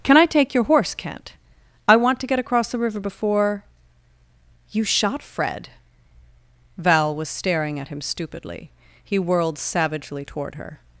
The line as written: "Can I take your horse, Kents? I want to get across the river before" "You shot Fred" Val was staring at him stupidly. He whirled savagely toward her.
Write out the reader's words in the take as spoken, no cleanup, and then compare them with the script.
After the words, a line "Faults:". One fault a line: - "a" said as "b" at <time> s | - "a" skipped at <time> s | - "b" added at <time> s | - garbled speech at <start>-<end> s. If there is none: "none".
"Can I take your horse, Kent? I want to get across the river before" "You shot Fred" Val was staring at him stupidly. He whirled savagely toward her.
Faults:
- "Kents" said as "Kent" at 0.9 s